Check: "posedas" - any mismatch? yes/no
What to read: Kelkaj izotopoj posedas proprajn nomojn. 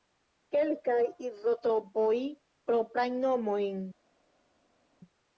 yes